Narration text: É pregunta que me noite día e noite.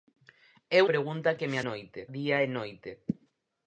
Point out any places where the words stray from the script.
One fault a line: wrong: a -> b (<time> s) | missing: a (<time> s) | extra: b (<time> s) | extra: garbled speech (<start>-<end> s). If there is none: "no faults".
no faults